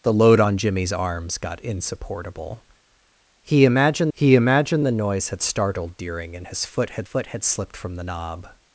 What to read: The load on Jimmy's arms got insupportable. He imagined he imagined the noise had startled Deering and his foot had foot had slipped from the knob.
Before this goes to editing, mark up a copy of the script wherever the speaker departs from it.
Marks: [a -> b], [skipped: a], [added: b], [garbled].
The load on Jimmy's arms got insupportable. He imagined he imagined the noise had startled Deering and his foot had foot had slipped from the knob.